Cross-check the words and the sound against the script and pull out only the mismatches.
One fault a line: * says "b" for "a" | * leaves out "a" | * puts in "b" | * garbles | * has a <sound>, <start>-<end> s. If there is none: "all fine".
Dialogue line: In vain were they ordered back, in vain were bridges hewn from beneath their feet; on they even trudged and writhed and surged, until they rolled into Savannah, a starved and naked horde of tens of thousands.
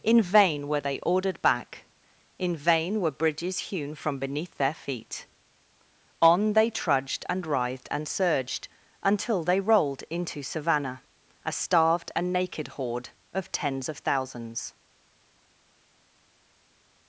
* leaves out "even"